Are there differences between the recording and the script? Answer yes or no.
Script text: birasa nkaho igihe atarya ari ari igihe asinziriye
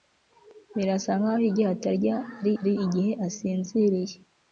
no